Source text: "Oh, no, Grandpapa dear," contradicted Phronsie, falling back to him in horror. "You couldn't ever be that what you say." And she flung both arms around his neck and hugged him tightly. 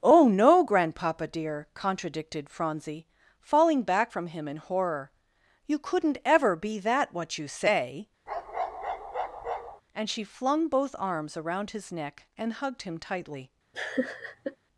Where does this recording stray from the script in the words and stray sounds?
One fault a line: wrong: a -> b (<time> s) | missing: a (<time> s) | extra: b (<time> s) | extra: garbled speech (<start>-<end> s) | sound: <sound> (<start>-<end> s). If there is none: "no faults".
wrong: to -> from (4.1 s)
sound: bark (8.3-9.8 s)
sound: laugh (13.7-14.6 s)